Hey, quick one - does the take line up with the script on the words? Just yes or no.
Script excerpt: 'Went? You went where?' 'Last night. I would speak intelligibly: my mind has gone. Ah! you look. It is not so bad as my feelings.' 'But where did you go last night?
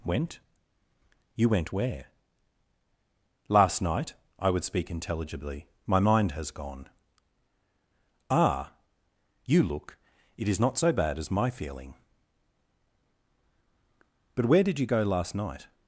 no